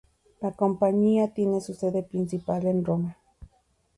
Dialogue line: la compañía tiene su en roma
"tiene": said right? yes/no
yes